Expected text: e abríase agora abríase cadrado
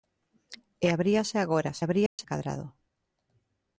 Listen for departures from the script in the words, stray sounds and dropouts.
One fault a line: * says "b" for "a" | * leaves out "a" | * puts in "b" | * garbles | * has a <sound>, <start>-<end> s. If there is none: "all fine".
* has a dropout, 2.1-2.2 s